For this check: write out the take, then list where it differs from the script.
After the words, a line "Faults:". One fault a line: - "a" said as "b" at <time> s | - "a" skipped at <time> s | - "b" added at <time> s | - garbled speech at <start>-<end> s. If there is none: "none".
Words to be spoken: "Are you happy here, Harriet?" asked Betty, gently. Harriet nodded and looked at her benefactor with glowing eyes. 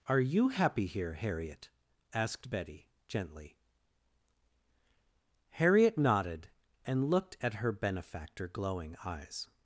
"Are you happy here, Harriet?" asked Betty, gently. Harriet nodded and looked at her benefactor glowing eyes.
Faults:
- "with" skipped at 8.5 s